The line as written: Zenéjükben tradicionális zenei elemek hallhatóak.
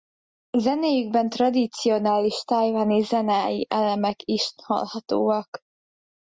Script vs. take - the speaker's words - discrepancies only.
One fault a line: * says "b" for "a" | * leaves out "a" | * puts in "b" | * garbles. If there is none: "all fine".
* puts in "tajvani"
* puts in "is"